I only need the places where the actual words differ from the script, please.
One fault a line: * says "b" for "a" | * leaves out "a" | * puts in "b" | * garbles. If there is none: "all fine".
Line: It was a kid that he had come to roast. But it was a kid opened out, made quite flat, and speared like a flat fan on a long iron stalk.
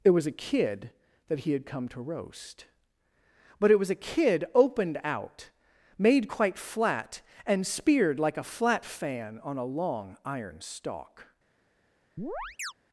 all fine